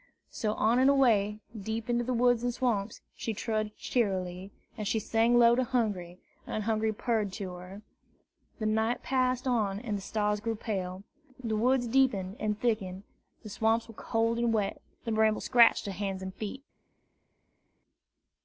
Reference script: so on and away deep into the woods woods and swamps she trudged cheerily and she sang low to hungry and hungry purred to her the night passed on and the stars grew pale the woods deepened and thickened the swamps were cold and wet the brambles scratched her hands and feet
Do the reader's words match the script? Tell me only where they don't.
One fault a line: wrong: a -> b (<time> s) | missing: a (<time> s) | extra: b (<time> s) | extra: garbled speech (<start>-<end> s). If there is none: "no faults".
missing: woods (2.4 s)